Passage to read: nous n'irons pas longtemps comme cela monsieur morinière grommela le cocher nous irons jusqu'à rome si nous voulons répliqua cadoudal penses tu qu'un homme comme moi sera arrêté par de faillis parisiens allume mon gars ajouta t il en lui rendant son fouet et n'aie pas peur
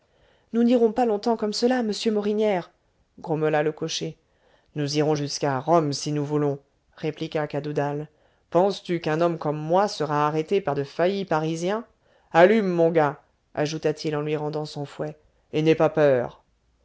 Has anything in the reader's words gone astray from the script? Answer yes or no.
no